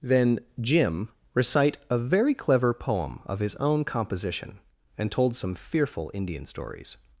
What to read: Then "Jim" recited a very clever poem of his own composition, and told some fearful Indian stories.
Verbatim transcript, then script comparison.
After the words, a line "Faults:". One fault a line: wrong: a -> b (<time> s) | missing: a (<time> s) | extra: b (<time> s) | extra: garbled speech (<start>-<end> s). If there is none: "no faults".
Then "Jim" recite a very clever poem of his own composition, and told some fearful Indian stories.
Faults:
wrong: recited -> recite (1.3 s)